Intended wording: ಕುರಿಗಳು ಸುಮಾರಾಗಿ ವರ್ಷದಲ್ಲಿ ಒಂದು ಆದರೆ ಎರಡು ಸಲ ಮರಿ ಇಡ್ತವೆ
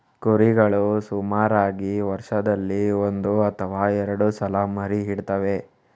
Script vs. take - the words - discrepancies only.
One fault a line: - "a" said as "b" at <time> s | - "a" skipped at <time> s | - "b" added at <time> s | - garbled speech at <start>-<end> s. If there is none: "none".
- "ಆದರೆ" said as "ಅಥವಾ" at 3.5 s